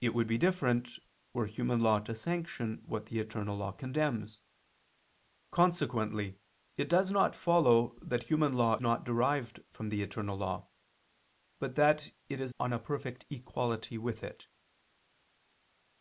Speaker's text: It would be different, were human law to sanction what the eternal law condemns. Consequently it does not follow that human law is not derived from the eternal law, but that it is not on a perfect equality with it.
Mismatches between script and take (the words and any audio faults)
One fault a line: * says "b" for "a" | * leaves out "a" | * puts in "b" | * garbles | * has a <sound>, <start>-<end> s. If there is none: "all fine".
* leaves out "is"
* leaves out "not"